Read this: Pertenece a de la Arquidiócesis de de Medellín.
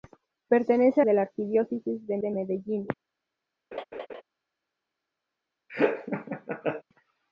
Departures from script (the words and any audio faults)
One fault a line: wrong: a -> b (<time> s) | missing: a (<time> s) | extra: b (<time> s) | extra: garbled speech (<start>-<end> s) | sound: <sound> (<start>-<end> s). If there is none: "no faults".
sound: laugh (3.7-4.2 s)
sound: laugh (5.7-6.8 s)